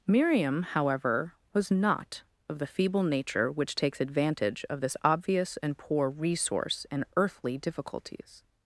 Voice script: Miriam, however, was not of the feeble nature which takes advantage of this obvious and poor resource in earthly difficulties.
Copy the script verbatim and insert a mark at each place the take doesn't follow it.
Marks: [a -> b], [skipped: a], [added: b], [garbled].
Miriam, however, was not of the feeble nature which takes advantage of this obvious and poor resource in earthly difficulties.